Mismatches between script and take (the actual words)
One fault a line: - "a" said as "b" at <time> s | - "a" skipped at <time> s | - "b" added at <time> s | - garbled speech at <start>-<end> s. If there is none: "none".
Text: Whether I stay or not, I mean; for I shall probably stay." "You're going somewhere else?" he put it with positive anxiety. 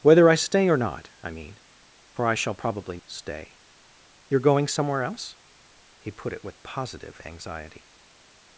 none